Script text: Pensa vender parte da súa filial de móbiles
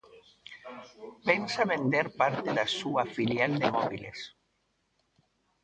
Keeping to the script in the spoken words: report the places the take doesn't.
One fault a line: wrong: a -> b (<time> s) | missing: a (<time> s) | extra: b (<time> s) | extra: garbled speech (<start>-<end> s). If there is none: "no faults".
no faults